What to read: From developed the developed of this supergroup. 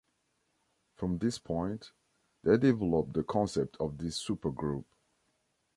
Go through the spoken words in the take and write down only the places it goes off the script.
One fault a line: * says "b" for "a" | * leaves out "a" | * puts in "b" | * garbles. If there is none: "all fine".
* puts in "this point they"
* says "concept" for "developed"